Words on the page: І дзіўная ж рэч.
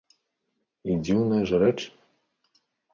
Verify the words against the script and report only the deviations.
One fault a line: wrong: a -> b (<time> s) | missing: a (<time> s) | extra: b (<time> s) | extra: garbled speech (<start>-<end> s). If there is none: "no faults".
no faults